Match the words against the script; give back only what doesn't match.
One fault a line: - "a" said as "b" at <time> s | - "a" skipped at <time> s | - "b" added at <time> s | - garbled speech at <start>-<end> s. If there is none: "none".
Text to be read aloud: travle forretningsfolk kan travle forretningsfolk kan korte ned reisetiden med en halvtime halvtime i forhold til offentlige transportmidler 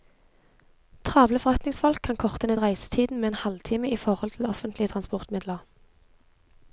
- "travle forretningsfolk kan" skipped at 2.2 s
- "halvtime" skipped at 3.9 s